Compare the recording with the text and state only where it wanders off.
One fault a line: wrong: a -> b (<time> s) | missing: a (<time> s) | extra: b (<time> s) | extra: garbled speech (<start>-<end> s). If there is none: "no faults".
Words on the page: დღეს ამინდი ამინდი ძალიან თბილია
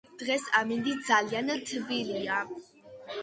missing: ამინდი (0.9 s)